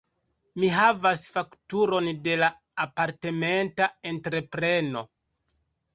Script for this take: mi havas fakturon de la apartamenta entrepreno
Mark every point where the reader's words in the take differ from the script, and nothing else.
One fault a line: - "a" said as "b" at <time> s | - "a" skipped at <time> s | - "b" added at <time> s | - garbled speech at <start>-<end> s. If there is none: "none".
none